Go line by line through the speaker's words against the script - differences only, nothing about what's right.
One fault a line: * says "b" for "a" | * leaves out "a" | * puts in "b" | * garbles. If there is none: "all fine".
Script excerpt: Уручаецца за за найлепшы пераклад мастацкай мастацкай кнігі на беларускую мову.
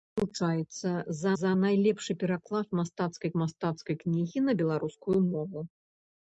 all fine